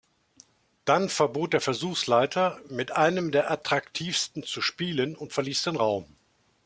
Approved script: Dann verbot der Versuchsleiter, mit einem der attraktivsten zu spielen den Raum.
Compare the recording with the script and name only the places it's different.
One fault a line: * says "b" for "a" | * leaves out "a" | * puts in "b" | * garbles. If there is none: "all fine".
* puts in "und verließ"